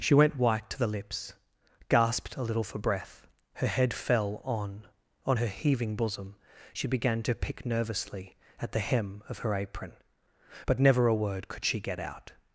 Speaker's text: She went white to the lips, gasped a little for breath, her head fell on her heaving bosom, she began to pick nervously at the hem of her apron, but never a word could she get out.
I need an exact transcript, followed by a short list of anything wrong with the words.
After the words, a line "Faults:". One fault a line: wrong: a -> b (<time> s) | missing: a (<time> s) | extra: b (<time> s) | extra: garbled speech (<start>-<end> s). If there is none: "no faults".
She went white to the lips, gasped a little for breath, her head fell on on her heaving bosom, she began to pick nervously at the hem of her apron, but never a word could she get out.
Faults:
extra: on (5.3 s)